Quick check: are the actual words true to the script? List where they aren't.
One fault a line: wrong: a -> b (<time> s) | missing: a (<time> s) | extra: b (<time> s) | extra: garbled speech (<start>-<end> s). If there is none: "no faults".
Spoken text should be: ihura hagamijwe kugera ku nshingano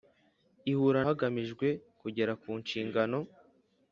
no faults